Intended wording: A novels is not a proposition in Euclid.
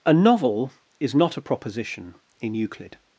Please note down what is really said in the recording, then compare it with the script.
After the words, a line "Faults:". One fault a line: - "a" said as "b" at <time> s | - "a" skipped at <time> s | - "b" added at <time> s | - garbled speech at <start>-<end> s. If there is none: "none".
A novel is not a proposition in Euclid.
Faults:
- "novels" said as "novel" at 0.1 s